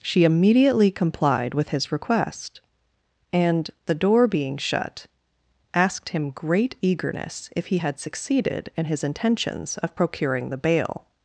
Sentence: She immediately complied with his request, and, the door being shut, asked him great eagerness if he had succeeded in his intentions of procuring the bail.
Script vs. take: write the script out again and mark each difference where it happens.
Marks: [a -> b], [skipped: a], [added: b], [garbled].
She immediately complied with his request, and, the door being shut, asked him great eagerness if he had succeeded in his intentions of procuring the bail.